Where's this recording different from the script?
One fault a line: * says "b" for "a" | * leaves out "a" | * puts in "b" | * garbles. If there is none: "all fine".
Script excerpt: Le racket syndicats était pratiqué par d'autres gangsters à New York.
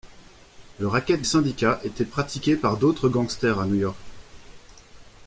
all fine